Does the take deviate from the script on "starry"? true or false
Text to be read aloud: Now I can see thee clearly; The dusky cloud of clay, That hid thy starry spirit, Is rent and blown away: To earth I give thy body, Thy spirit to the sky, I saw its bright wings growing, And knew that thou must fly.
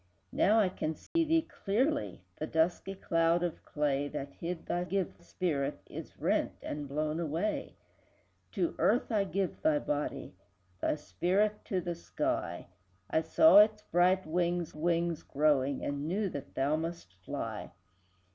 true